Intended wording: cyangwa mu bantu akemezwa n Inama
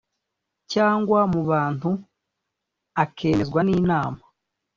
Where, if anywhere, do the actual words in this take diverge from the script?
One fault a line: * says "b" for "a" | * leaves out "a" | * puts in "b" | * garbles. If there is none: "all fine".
all fine